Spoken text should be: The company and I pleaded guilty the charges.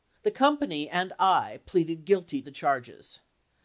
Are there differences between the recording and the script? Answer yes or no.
no